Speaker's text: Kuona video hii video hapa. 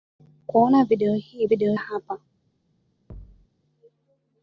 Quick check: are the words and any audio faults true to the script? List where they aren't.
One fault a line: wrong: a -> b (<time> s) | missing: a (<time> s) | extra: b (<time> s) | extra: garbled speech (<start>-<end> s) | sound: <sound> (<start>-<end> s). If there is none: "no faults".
sound: thud (3.1-3.5 s)